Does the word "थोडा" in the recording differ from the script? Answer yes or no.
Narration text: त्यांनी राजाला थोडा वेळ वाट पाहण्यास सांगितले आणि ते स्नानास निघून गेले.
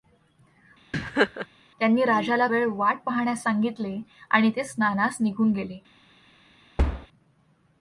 yes